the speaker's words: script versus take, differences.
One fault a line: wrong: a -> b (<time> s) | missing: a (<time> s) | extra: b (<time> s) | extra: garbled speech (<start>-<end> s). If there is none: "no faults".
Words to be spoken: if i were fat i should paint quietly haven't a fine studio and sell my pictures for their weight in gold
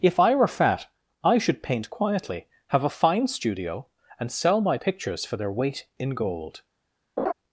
wrong: haven't -> have (2.7 s)